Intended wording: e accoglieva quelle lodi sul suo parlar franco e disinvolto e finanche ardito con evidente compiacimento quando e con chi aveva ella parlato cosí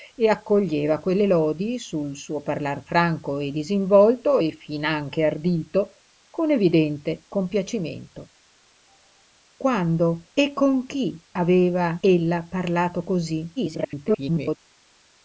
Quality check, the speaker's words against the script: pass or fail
fail